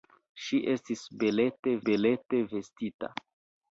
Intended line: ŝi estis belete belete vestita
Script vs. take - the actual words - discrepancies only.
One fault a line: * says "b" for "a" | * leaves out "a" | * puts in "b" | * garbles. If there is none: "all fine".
all fine